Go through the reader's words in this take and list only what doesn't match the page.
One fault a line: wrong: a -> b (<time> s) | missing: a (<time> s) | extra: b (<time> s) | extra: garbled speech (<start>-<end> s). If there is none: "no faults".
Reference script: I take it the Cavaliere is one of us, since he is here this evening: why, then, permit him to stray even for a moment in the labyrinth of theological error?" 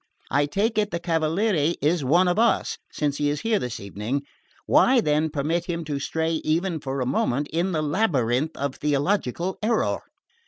no faults